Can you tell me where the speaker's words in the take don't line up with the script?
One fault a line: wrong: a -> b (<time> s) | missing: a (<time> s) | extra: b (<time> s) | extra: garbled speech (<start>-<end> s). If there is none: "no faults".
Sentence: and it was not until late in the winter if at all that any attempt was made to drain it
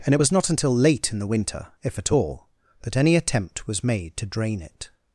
no faults